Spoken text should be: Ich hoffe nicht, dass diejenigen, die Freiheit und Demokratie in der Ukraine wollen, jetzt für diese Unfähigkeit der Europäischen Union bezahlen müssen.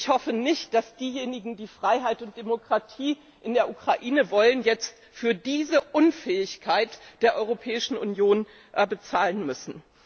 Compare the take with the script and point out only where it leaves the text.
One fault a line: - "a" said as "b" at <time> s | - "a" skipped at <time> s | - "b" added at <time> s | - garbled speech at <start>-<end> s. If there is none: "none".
none